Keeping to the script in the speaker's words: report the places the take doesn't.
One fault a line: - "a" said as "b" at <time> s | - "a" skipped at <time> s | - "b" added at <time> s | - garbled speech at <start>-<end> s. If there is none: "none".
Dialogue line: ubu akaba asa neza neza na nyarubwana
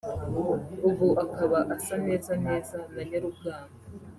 none